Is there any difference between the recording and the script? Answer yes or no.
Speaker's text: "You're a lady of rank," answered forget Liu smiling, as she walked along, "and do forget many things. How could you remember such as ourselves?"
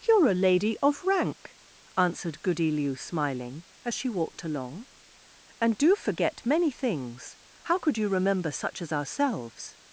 yes